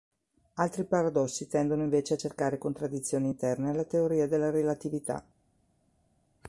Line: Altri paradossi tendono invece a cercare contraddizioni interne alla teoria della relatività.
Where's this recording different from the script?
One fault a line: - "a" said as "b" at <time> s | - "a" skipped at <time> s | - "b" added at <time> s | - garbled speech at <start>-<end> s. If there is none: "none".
none